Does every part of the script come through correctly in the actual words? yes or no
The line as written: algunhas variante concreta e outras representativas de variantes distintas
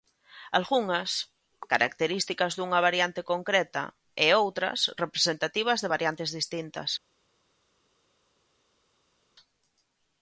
no